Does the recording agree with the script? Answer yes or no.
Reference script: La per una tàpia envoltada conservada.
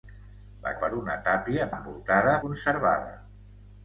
yes